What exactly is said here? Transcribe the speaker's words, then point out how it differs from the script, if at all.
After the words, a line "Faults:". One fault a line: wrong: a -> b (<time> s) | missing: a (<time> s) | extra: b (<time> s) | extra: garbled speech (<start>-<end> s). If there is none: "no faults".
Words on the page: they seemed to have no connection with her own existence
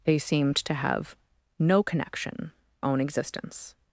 they seemed to have no connection own existence
Faults:
missing: with her (2.5 s)